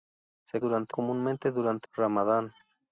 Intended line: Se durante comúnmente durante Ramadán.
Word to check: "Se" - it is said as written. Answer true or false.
true